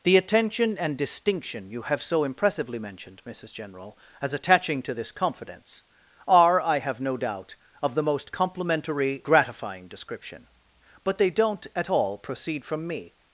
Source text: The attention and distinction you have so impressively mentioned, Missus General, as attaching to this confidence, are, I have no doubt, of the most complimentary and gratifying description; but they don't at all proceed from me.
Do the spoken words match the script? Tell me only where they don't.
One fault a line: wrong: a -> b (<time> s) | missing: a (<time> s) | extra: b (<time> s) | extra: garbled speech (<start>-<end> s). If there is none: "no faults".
missing: and (9.2 s)